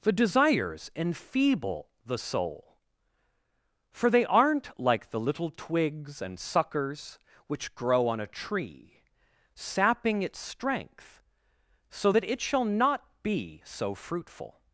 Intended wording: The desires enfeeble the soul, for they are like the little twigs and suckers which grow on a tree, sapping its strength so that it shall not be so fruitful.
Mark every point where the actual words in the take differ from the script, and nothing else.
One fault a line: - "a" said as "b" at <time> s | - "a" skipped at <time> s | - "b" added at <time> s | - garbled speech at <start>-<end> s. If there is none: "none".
- "are" said as "aren't" at 4.2 s